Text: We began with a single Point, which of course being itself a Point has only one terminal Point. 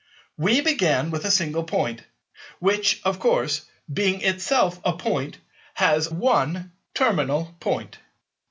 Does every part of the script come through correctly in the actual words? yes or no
no